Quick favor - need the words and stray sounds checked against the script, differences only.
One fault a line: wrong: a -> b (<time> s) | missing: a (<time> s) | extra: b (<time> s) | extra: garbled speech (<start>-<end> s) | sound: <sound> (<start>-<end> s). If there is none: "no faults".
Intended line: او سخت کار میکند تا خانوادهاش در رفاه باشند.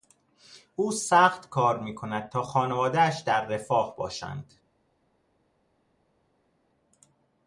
no faults